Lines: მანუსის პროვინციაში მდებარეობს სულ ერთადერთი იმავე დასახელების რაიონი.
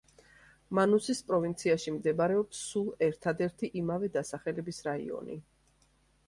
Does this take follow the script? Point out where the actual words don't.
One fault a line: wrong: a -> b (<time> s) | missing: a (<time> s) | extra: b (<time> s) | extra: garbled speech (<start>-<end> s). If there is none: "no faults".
no faults